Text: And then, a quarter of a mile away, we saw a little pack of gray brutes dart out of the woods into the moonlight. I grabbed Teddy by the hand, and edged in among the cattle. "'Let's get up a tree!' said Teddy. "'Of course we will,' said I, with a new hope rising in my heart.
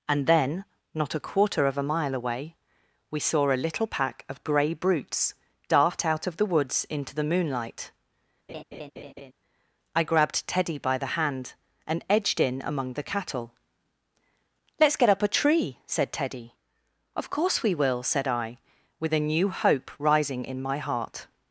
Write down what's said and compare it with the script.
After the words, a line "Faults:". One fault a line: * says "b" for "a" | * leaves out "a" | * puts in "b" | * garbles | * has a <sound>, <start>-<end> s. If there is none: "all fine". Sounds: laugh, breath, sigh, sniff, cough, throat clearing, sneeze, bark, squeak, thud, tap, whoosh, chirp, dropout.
And then, not a quarter of a mile away, we saw a little pack of gray brutes dart out of the woods into the moonlight. I grabbed Teddy by the hand, and edged in among the cattle. "'Let's get up a tree!' said Teddy. "'Of course we will,' said I, with a new hope rising in my heart.
Faults:
* puts in "not"
* has a laugh, 8.5-9.3 s